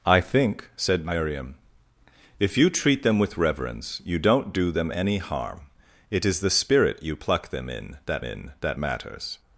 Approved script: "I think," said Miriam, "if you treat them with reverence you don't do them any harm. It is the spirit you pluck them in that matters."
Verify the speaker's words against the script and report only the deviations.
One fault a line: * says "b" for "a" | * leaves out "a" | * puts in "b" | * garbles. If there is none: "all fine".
* puts in "in that"